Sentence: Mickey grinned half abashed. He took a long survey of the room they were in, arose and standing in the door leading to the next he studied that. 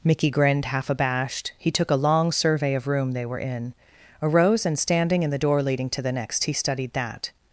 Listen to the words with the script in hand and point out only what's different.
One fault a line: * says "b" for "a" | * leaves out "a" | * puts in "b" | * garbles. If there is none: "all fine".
* leaves out "the"